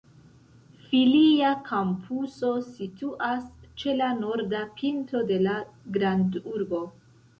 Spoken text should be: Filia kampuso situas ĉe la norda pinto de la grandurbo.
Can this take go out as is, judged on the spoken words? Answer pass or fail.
pass